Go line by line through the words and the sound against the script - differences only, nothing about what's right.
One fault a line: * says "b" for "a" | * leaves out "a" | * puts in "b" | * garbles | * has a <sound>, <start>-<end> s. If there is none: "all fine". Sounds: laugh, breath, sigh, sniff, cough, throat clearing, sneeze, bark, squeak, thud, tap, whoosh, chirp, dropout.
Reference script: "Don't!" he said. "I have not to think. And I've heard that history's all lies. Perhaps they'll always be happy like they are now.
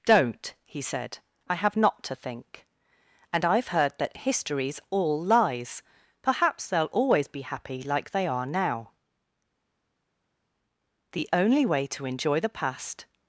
* puts in "The only way to enjoy the past"